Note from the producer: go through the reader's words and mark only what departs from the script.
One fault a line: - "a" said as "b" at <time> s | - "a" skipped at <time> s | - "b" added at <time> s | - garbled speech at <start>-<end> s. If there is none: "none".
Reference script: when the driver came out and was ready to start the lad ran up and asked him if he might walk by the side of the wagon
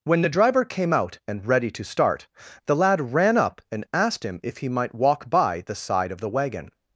- "was" skipped at 1.4 s